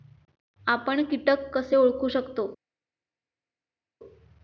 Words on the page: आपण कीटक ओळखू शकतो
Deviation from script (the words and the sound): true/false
true